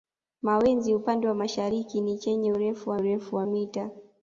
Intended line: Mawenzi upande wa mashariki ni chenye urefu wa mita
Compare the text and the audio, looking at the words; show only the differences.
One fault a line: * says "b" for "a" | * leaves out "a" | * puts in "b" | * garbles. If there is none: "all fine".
* puts in "urefu wa"